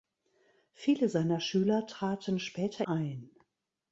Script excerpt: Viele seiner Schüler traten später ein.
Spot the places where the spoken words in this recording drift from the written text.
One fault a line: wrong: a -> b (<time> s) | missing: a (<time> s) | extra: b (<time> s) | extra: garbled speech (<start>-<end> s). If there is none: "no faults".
no faults